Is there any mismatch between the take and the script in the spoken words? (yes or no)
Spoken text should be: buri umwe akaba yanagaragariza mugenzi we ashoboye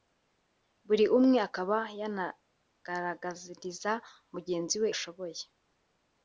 no